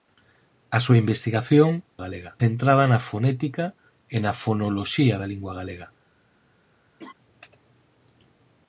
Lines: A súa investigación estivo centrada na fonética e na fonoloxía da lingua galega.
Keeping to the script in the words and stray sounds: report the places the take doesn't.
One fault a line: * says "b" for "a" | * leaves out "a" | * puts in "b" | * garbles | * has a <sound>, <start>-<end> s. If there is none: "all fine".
* says "galega" for "estivo"
* has a laugh, 7.0-7.1 s